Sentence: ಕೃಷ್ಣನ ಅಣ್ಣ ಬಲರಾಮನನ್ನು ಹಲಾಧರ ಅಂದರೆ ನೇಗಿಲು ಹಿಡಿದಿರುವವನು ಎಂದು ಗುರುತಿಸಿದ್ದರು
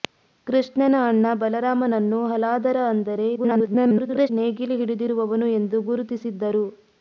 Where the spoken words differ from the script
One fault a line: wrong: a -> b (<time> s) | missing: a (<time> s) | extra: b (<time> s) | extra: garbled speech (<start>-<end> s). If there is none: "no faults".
extra: garbled speech (3.4-4.3 s)